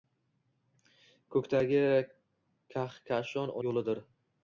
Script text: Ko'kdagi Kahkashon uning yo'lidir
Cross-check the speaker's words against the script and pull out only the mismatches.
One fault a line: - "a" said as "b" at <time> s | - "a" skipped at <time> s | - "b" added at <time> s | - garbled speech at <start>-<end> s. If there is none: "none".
- "uning" skipped at 3.5 s